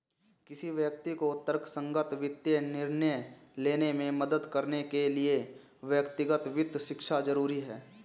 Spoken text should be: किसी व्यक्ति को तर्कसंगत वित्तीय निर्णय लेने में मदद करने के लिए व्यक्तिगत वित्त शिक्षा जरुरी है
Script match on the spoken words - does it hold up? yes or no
yes